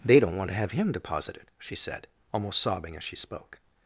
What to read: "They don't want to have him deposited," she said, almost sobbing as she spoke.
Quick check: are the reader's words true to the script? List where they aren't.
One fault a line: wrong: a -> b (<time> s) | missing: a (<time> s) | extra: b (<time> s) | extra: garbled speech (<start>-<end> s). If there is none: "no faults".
no faults